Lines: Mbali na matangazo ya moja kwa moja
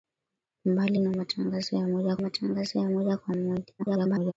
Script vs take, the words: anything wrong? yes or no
yes